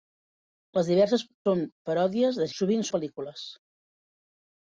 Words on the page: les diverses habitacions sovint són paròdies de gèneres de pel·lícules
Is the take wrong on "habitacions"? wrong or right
wrong